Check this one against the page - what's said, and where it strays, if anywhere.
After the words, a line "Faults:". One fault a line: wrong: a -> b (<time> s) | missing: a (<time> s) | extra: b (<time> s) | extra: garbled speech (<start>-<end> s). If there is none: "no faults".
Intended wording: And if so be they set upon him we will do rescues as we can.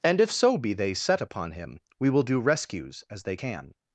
And if so be they set upon him we will do rescues as they can.
Faults:
wrong: we -> they (3.2 s)